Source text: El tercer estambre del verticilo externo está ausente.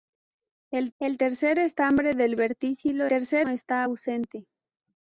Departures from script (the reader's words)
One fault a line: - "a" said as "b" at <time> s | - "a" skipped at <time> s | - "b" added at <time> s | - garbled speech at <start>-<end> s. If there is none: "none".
- "el" added at 1.0 s
- "externo" said as "tercer" at 3.1 s